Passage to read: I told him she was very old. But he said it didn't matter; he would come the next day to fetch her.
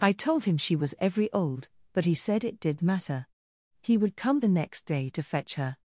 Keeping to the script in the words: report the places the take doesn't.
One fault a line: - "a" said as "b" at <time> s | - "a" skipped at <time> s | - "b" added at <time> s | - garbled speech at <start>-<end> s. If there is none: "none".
- "very" said as "every" at 1.0 s
- "didn't" said as "did" at 2.6 s